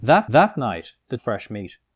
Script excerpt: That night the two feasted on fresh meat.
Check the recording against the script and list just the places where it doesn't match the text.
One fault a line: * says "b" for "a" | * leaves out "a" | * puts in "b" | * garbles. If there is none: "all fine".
* puts in "that"
* leaves out "two feasted on"